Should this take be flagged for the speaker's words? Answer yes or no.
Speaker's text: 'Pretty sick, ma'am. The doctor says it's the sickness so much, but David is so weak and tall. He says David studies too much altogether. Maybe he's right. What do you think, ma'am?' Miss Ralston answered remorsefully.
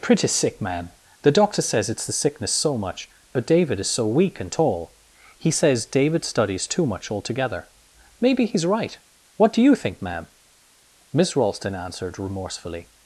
no